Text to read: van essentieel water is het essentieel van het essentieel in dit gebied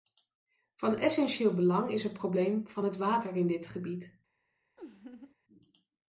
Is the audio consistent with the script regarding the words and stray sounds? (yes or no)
no